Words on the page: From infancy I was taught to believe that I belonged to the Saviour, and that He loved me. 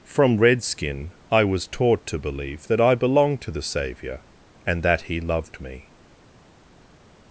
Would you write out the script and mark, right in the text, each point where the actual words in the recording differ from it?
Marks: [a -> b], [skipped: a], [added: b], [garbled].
From [infancy -> redskin] I was taught to believe that I belonged to the Saviour, and that He loved me.